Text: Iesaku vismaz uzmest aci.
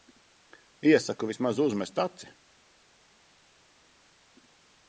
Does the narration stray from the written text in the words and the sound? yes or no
no